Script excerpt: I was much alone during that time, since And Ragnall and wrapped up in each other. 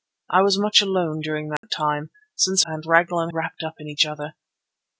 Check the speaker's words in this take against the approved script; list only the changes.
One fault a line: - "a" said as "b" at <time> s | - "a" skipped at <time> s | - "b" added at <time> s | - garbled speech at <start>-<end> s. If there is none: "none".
none